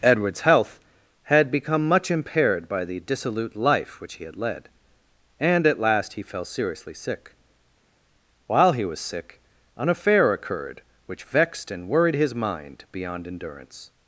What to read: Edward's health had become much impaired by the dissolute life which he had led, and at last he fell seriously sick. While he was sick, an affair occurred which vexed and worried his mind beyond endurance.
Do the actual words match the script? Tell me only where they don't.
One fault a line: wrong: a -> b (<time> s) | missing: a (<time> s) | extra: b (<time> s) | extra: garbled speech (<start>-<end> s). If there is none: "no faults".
no faults